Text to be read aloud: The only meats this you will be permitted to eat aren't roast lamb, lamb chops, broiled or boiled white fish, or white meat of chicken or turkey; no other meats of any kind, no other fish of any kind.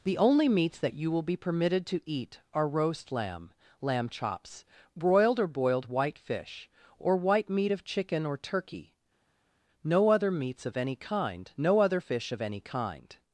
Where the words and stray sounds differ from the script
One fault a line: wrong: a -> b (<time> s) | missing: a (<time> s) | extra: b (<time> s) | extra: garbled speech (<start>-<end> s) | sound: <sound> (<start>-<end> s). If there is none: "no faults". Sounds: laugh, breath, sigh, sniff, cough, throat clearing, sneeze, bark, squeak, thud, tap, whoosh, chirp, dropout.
wrong: this -> that (0.8 s)
wrong: aren't -> are (2.5 s)